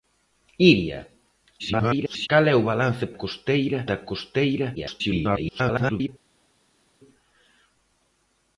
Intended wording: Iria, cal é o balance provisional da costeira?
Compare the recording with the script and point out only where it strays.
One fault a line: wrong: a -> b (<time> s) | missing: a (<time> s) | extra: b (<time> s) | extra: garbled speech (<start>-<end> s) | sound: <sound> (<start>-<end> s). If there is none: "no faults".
extra: garbled speech (1.6-2.3 s)
wrong: provisional -> costeira (3.2 s)
extra: garbled speech (4.8-6.1 s)